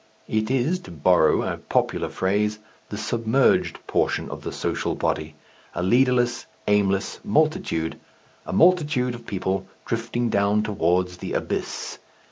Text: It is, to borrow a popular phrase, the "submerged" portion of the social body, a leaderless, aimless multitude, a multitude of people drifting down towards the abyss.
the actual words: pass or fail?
pass